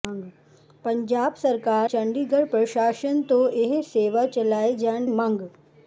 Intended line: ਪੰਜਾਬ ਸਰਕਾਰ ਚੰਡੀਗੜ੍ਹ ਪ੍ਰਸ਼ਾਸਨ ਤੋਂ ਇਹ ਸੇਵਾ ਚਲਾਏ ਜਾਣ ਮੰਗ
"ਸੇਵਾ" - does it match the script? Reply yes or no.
yes